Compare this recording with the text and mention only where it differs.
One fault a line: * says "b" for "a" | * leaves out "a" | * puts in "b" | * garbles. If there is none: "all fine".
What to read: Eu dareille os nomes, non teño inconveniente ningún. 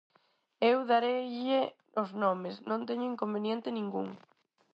all fine